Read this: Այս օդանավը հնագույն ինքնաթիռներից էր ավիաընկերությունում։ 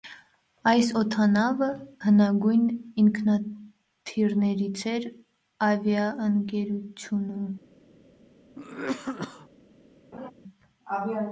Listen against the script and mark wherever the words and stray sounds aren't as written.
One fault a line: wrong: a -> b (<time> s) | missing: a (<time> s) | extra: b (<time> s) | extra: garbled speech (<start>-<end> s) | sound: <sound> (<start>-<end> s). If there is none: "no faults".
sound: cough (8.6-9.5 s)
sound: laugh (10.1-10.3 s)